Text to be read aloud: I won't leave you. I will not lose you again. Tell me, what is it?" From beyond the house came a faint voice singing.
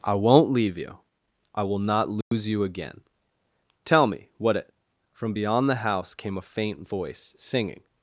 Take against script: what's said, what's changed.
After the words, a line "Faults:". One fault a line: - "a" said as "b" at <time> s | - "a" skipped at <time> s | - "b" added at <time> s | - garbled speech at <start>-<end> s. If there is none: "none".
I won't leave you. I will not lose you again. Tell me, what it?" From beyond the house came a faint voice singing.
Faults:
- "is" skipped at 4.5 s